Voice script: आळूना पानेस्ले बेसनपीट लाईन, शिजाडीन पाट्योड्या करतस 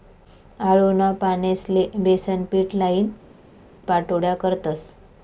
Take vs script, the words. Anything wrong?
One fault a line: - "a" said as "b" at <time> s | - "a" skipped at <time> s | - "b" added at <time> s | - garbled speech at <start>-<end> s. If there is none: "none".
- "शिजाडीन" skipped at 3.1 s